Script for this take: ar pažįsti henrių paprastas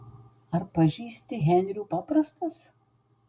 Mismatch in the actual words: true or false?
false